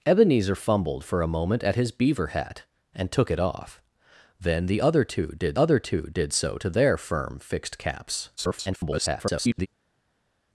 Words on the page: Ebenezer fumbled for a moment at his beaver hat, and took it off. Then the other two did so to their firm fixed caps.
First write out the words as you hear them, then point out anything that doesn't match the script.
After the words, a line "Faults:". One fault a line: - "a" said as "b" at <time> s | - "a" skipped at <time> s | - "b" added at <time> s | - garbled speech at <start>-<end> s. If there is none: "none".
Ebenezer fumbled for a moment at his beaver hat, and took it off. Then the other two did other two did so to their firm fixed caps. [garbled]
Faults:
- "other two did" added at 5.6 s
- garbled speech at 8.4-9.7 s